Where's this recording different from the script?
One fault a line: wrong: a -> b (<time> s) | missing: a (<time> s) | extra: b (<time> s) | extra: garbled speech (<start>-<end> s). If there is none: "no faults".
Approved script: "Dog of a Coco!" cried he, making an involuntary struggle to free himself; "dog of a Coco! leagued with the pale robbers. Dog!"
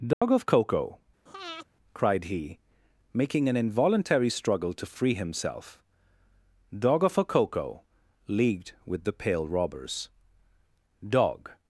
missing: a (0.5 s)